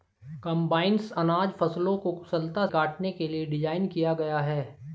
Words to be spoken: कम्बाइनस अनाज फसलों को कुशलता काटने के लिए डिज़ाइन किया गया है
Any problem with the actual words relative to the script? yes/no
no